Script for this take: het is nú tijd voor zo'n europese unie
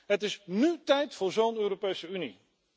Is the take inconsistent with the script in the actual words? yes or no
no